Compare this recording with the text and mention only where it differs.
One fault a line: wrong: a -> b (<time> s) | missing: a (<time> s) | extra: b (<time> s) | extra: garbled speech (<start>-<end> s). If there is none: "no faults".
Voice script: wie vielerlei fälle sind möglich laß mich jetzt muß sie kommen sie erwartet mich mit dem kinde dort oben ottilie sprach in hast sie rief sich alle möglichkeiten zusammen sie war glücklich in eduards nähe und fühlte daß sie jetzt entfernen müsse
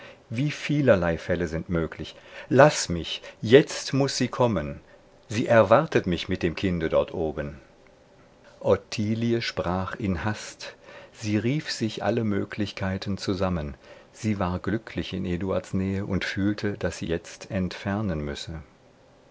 no faults